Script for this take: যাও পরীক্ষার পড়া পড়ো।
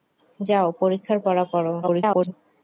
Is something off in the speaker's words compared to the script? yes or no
yes